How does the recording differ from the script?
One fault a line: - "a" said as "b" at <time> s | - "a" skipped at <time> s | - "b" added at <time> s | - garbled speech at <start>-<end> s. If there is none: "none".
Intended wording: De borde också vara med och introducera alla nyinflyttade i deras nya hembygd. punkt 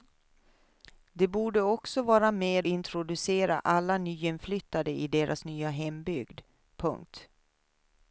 - "och" skipped at 2.7 s